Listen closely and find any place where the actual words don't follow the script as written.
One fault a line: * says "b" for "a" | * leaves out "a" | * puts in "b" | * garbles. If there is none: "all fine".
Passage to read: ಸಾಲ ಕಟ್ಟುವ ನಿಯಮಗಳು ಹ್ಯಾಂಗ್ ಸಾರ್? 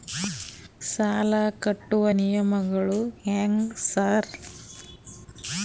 all fine